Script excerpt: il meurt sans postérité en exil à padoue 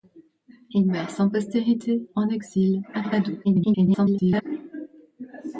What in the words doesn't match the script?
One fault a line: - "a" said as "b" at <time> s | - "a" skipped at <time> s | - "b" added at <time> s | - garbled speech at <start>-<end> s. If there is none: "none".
- garbled speech at 3.4-4.4 s